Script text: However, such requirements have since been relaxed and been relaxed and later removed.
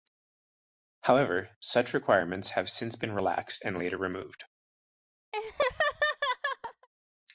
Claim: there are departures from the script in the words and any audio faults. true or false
true